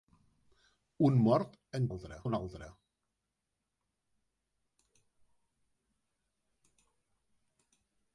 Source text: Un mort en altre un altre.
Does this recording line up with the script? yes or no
yes